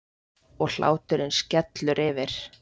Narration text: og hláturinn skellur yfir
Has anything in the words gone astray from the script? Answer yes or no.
no